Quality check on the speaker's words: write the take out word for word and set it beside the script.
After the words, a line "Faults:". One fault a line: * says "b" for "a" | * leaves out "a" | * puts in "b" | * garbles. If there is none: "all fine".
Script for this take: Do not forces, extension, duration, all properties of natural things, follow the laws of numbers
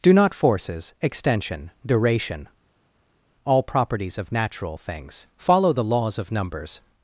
Do not forces, extension, duration, all properties of natural things, follow the laws of numbers
Faults:
all fine